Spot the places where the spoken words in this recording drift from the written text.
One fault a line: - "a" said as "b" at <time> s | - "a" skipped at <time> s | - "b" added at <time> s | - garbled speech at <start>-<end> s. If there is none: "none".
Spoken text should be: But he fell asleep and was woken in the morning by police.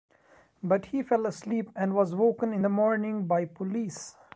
none